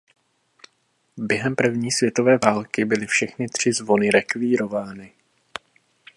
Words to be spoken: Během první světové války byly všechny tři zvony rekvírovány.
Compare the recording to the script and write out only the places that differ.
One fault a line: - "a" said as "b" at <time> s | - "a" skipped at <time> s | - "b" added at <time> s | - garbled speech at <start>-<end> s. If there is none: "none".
none